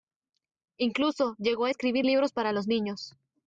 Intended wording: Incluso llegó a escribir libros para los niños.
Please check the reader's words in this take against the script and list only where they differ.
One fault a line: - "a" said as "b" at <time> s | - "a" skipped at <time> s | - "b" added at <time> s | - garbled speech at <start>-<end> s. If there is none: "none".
none